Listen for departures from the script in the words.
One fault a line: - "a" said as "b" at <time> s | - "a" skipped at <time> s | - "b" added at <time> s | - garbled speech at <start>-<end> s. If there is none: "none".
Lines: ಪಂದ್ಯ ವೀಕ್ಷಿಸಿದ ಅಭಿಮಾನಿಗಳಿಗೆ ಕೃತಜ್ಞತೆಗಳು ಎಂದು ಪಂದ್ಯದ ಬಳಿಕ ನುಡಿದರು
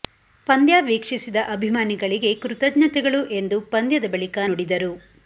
none